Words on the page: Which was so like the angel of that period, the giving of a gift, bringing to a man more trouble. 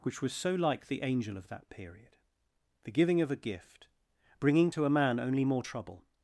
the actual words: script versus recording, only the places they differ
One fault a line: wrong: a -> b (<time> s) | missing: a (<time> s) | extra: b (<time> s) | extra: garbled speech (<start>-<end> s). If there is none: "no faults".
extra: only (5.2 s)